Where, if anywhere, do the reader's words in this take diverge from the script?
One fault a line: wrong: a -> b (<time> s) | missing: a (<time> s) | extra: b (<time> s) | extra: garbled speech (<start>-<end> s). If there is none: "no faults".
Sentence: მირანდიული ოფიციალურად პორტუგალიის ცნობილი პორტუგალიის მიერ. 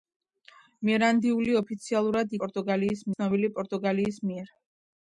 no faults